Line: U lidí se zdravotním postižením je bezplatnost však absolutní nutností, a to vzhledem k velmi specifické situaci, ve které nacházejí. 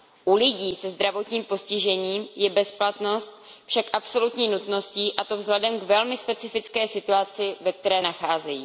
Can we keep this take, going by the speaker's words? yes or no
yes